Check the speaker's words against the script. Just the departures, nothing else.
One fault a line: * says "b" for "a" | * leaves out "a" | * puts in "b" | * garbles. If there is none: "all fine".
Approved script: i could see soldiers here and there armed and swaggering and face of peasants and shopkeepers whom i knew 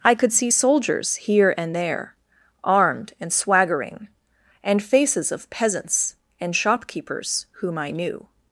* says "faces" for "face"